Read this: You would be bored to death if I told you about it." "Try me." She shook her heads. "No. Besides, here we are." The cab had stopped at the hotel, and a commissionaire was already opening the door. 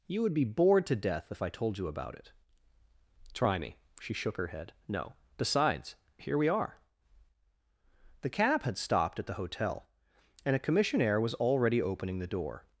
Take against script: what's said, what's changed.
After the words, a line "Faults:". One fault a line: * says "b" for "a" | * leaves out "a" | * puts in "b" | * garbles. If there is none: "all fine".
You would be bored to death if I told you about it." "Try me." She shook her head. "No. Besides, here we are." The cab had stopped at the hotel, and a commissionaire was already opening the door.
Faults:
* says "head" for "heads"